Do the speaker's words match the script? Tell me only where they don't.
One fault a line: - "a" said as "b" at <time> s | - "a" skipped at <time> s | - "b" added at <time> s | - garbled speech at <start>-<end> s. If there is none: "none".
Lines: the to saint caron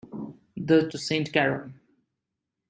none